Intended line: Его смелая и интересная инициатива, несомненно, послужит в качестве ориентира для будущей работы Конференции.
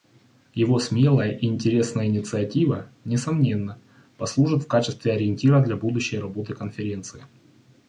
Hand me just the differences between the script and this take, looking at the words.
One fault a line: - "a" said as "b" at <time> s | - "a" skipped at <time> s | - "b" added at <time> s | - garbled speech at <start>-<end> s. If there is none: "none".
none